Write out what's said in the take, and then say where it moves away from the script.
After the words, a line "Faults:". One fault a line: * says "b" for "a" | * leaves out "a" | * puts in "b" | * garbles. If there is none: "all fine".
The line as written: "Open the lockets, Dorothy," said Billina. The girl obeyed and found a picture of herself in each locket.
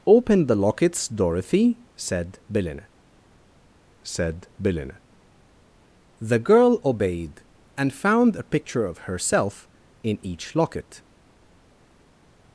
"Open the lockets, Dorothy," said Billina said Billina. The girl obeyed and found a picture of herself in each locket.
Faults:
* puts in "said Billina"